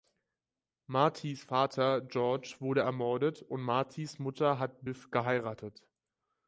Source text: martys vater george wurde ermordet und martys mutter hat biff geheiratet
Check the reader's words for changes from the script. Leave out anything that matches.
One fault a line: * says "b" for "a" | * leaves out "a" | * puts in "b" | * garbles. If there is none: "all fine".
all fine